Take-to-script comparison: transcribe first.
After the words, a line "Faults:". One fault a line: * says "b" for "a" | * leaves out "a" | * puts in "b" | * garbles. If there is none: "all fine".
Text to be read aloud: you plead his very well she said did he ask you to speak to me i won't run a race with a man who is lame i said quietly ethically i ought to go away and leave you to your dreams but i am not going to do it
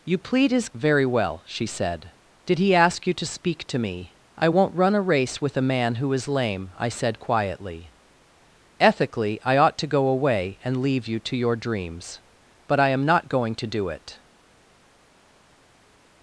you plead his very well she said did he ask you to speak to me i won't run a race with a man who is lame i said quietly ethically i ought to go away and leave you to your dreams but i am not going to do it
Faults:
all fine